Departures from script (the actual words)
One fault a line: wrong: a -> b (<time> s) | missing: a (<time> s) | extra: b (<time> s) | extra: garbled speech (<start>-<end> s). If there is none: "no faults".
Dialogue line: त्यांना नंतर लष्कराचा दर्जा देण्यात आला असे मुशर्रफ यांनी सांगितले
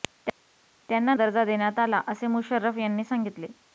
missing: नंतर लष्कराचा (1.1 s)